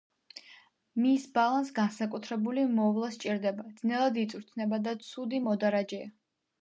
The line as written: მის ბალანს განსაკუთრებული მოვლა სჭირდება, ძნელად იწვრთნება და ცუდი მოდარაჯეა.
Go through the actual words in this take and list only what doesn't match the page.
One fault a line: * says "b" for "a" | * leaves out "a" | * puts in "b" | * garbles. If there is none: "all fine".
all fine